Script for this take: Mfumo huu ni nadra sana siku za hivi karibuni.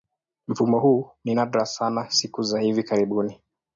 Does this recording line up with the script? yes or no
yes